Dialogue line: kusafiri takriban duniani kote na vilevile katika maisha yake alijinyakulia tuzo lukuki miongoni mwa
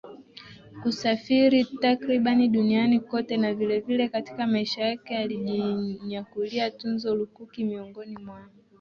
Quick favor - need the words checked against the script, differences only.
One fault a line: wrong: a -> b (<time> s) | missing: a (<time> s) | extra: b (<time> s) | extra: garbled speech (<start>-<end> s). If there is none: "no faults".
no faults